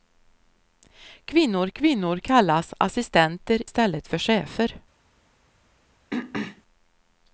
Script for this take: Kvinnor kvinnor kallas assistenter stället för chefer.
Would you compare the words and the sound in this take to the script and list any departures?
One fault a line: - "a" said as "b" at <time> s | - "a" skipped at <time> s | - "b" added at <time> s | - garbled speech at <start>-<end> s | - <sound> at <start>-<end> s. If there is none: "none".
- throat clearing at 6.1-6.6 s